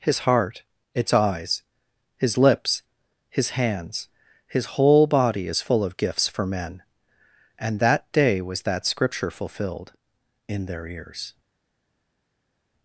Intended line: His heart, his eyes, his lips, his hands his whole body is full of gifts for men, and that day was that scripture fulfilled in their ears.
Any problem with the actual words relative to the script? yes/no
yes